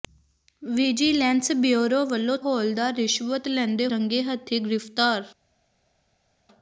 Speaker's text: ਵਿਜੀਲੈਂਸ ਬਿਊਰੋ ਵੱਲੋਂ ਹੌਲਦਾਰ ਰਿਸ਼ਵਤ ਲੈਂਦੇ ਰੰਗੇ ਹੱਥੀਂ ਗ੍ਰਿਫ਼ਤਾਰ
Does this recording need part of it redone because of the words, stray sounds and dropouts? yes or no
no